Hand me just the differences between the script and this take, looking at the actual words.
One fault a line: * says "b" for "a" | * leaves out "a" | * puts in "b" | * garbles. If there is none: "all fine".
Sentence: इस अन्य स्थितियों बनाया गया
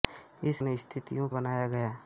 all fine